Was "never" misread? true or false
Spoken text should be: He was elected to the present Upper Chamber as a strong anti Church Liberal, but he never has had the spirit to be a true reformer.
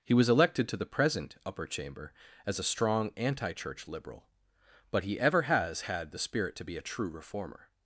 true